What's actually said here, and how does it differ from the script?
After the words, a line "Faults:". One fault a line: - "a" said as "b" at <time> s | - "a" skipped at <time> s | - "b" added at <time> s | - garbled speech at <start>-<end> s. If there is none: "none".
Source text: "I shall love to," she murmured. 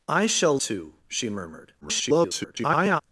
"I shall to," she murmured. [garbled]
Faults:
- "love" skipped at 0.6 s
- garbled speech at 1.8-3.0 s